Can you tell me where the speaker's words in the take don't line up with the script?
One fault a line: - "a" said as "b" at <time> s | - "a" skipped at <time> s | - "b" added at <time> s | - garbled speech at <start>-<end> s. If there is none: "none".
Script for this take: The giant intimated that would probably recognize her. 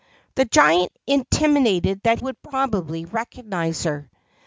none